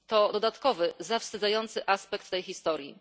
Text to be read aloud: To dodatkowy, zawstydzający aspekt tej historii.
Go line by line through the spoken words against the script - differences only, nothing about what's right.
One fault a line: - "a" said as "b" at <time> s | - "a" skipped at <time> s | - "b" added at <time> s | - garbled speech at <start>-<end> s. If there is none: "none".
none